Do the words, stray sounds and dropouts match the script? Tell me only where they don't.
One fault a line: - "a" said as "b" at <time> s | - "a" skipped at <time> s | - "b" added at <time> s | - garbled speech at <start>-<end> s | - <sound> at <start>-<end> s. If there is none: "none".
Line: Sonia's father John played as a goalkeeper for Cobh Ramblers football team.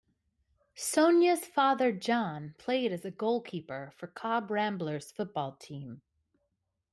none